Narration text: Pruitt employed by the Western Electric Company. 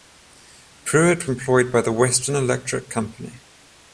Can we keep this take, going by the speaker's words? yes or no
yes